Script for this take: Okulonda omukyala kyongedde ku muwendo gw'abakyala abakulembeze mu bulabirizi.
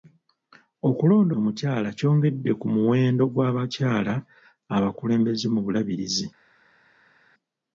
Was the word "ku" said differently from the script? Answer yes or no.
no